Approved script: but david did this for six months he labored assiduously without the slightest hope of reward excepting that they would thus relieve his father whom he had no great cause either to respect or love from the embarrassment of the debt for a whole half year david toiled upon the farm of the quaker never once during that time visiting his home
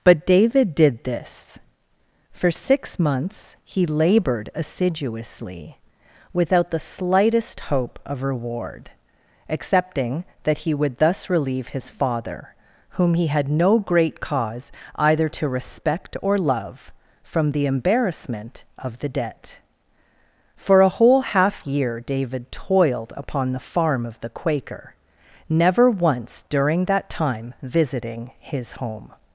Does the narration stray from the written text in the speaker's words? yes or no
yes